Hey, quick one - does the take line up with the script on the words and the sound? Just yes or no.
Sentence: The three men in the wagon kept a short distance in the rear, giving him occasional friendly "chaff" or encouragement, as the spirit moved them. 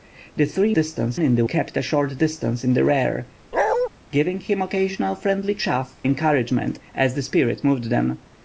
no